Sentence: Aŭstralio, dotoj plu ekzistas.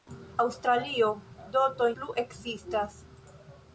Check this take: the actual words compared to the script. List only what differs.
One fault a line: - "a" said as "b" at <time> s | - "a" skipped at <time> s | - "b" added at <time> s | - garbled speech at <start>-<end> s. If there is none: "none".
none